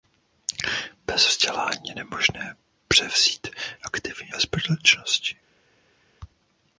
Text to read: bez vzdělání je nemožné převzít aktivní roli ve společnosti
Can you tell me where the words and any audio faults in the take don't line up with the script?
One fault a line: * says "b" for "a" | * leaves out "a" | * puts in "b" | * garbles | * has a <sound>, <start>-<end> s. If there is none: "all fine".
* leaves out "roli"